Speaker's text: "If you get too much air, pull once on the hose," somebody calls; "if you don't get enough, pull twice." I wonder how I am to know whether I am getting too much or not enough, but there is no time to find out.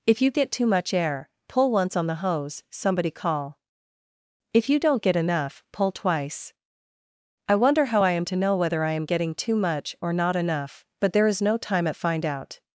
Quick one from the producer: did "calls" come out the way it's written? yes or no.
no